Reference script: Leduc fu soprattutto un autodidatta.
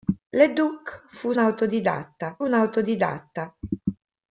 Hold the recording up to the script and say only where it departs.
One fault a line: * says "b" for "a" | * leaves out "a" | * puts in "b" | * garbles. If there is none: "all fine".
* says "autodidatta" for "soprattutto"